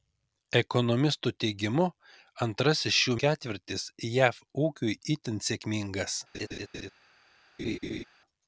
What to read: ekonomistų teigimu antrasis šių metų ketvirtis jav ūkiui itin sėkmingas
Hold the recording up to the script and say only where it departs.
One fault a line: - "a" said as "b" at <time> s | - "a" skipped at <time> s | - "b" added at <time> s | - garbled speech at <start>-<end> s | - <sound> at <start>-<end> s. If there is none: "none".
- "metų" skipped at 3.1 s
- laugh at 6.3-6.9 s
- laugh at 7.6-8.0 s